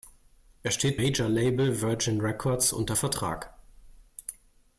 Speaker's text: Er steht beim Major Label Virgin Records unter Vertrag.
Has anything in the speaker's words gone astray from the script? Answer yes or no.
yes